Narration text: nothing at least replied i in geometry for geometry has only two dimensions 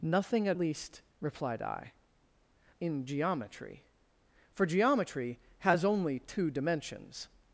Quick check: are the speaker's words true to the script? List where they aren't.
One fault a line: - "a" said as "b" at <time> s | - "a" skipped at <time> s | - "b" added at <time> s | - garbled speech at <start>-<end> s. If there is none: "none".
none